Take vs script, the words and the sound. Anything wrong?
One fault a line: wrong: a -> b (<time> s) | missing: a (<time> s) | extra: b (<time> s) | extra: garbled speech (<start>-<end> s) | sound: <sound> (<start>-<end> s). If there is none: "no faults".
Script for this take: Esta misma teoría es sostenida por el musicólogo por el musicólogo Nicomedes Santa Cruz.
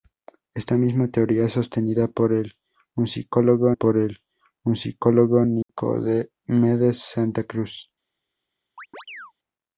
sound: dropout (5.6-5.7 s)
sound: chirp (8.8-9.3 s)